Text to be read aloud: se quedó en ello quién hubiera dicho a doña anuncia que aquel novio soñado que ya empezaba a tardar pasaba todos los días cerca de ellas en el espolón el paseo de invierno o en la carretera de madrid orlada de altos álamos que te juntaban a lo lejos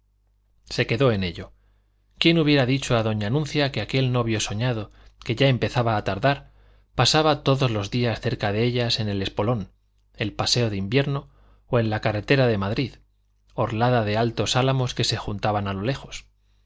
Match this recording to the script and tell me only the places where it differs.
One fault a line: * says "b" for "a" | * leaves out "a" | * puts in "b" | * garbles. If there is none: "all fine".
* says "se" for "te"